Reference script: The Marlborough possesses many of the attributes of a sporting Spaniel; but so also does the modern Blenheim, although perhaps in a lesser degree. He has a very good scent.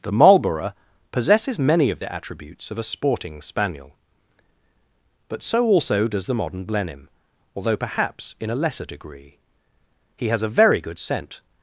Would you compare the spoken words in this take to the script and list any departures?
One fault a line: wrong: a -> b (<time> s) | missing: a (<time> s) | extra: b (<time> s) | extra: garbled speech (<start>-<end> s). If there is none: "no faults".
no faults